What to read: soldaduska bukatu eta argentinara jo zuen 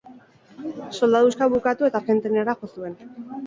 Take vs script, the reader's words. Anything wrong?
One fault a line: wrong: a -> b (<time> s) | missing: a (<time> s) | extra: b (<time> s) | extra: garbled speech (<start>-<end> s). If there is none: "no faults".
no faults